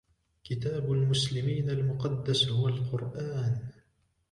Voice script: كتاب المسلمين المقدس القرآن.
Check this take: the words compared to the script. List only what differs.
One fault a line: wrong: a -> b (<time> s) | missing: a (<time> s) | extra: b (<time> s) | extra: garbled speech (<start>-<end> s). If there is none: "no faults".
extra: هو (2.5 s)